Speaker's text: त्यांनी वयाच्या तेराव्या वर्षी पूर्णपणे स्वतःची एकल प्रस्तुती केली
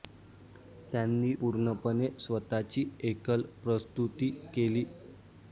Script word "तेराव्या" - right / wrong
wrong